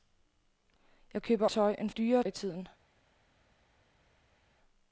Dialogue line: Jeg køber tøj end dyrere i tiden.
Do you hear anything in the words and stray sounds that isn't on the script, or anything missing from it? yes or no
no